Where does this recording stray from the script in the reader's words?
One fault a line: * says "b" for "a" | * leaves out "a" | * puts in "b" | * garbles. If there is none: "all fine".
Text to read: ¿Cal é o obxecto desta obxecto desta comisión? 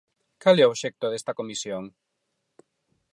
* leaves out "obxecto desta"